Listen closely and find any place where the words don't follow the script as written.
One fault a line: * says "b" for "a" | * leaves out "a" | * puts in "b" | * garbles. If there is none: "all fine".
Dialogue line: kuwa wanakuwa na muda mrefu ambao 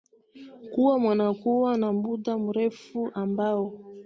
all fine